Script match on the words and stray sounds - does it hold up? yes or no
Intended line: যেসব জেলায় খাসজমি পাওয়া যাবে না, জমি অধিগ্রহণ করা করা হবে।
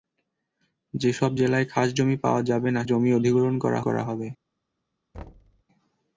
no